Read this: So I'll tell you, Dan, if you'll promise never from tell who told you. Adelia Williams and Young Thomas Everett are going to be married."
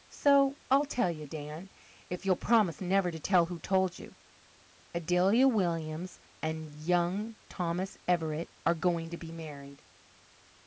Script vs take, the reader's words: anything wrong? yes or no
yes